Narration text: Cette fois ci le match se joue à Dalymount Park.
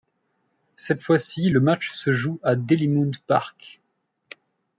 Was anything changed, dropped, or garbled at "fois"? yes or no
no